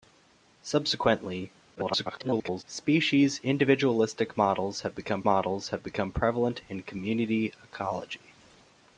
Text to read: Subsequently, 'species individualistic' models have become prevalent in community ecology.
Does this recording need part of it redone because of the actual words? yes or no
yes